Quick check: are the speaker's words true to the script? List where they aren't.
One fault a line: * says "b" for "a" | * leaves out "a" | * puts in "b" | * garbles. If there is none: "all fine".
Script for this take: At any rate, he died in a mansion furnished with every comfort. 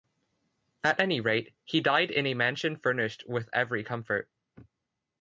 all fine